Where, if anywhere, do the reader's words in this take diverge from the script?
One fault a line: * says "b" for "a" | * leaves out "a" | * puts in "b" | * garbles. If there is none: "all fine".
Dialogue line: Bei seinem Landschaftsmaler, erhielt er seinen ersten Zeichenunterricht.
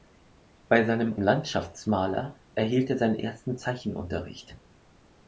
all fine